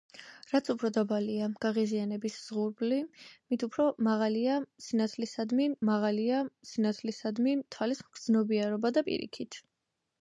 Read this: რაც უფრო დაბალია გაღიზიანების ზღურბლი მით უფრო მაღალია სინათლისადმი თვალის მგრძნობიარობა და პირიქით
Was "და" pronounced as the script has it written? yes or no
yes